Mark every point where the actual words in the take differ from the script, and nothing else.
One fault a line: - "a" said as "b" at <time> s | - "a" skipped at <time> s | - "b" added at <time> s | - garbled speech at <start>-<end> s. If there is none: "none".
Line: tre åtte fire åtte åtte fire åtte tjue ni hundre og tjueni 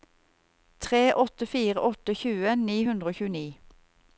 - "åtte fire åtte" skipped at 2.1 s